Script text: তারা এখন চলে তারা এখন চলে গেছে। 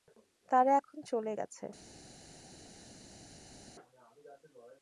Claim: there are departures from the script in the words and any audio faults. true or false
true